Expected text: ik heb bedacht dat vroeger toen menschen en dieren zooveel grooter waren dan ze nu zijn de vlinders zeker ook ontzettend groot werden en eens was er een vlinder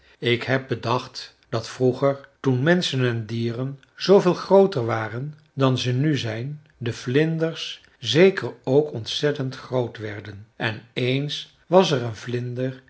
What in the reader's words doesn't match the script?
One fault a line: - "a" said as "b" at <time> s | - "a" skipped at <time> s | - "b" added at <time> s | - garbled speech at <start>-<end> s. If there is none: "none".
none